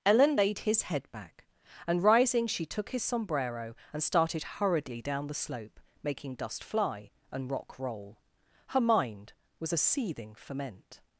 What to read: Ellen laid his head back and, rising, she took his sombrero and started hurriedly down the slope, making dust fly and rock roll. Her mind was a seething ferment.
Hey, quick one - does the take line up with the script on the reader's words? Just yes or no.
yes